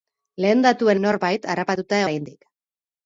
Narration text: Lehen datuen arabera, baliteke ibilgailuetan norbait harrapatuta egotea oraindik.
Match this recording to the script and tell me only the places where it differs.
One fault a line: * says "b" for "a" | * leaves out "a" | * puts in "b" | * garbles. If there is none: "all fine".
* leaves out "arabera baliteke ibilgailuetan"
* leaves out "egotea"